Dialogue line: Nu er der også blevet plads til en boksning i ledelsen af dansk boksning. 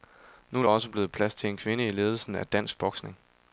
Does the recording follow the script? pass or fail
fail